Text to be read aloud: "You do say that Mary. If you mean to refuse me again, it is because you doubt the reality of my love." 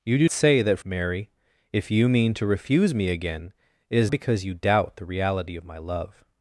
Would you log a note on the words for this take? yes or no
no